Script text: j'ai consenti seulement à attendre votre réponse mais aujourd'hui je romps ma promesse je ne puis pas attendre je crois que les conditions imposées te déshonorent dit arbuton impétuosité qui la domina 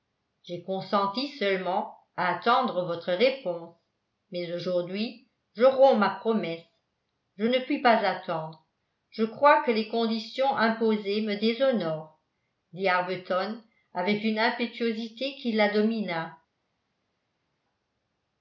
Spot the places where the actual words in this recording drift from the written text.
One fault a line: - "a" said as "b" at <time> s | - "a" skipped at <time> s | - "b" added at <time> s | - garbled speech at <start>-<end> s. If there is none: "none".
- "te" said as "me" at 11.2 s
- "avec une" added at 13.9 s